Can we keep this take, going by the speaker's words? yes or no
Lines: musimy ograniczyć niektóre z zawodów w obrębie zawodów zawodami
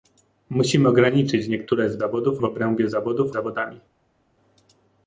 yes